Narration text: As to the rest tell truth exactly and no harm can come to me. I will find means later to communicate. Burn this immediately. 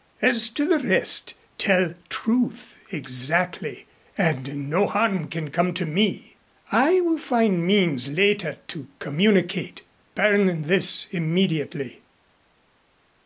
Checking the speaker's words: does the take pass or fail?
pass